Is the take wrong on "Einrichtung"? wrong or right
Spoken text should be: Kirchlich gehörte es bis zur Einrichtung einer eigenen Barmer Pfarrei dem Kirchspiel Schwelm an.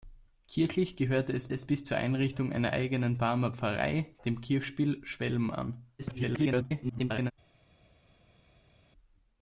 right